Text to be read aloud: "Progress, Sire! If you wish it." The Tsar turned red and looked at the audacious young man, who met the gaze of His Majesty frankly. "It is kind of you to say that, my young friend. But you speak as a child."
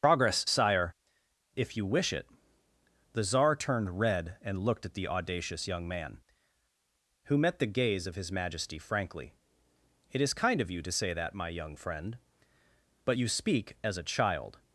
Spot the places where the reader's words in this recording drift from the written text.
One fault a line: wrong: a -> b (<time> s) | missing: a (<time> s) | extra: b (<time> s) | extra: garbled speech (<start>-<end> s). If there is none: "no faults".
no faults